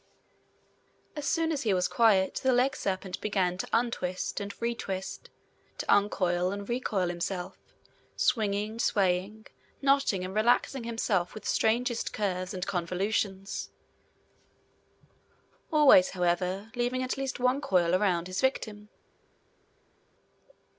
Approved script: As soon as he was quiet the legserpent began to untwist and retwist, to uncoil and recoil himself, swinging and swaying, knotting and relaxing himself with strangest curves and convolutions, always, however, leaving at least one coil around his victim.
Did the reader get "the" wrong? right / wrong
right